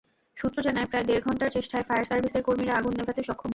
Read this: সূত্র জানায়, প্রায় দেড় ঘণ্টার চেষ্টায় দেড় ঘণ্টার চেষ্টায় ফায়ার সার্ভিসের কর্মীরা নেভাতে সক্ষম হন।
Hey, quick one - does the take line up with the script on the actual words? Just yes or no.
no